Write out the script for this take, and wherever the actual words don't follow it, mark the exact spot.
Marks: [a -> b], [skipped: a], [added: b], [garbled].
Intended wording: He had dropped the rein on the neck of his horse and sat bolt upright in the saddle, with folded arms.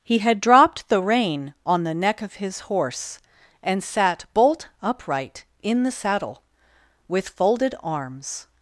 He had dropped the rein on the neck of his horse and sat bolt upright in the saddle, with folded arms.